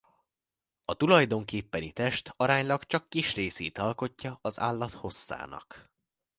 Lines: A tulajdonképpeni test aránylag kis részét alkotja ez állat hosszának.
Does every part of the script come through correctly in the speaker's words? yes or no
no